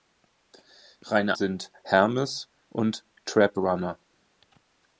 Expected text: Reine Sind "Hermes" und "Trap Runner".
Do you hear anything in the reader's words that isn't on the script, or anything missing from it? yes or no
no